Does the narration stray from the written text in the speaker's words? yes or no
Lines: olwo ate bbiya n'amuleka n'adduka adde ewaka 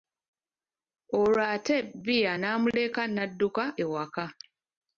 yes